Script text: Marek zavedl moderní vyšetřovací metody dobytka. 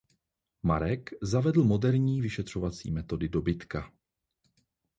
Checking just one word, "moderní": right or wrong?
right